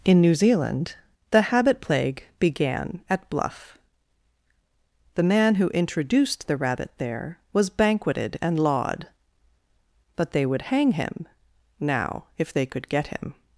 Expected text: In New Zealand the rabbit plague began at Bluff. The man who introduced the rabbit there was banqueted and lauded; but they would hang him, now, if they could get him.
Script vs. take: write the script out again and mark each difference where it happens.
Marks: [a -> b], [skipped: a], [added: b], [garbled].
In New Zealand the [rabbit -> habit] plague began at Bluff. The man who introduced the rabbit there was banqueted and [lauded; -> laud] but they would hang him, now, if they could get him.